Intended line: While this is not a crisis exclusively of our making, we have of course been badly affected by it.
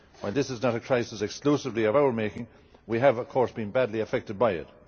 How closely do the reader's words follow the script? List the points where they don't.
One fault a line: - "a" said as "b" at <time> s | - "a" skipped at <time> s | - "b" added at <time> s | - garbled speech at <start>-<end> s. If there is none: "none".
none